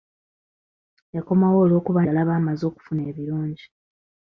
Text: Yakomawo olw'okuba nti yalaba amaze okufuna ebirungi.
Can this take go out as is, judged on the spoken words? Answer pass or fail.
fail